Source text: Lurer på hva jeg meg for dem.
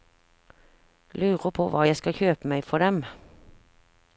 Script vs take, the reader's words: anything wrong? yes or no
yes